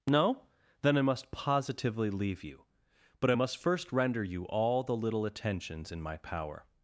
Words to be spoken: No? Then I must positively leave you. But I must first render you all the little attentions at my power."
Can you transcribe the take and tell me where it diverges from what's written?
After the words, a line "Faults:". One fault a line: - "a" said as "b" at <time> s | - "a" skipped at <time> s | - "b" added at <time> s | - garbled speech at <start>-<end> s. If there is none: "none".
No? Then I must positively leave you. But I must first render you all the little attentions in my power."
Faults:
- "at" said as "in" at 5.9 s